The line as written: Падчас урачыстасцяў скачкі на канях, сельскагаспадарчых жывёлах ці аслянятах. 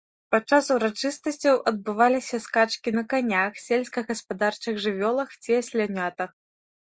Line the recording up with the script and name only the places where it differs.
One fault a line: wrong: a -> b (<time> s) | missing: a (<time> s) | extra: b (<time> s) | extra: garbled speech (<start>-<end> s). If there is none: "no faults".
extra: адбываліся (1.7 s)